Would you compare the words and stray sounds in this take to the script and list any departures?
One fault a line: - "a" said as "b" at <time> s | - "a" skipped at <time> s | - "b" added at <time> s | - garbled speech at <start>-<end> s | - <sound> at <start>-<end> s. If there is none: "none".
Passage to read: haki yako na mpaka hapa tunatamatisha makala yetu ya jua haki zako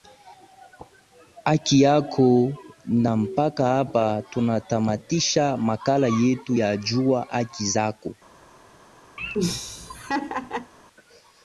- laugh at 9.2-10.7 s